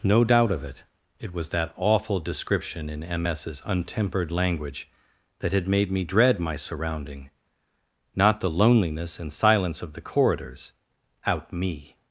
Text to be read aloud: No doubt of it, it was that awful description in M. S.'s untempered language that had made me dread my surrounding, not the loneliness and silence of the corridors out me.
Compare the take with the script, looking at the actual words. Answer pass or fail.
pass